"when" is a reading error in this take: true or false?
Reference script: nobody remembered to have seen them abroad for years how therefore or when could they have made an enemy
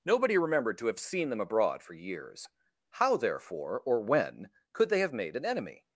false